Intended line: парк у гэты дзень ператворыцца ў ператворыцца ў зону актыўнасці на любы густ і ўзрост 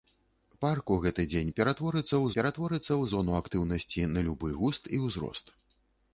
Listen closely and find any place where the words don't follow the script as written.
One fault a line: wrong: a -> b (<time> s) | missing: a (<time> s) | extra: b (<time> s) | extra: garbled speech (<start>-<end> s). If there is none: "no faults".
no faults